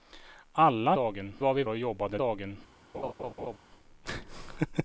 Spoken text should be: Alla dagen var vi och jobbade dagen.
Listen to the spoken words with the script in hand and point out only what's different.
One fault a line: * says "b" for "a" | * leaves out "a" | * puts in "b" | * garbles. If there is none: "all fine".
all fine